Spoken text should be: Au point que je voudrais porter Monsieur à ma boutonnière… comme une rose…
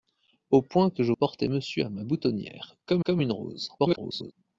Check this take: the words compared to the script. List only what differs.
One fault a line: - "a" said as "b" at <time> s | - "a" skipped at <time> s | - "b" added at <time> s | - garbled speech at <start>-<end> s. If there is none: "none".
- "voudrais" skipped at 1.1 s
- "comme" added at 3.0 s
- garbled speech at 3.8-4.3 s